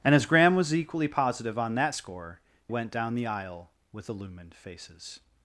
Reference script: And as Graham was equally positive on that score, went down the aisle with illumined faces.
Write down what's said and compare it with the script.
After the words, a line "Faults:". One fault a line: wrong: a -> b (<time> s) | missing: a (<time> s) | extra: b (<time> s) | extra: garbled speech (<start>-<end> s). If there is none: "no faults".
And as Graham was equally positive on that score, went down the aisle with illumined faces.
Faults:
no faults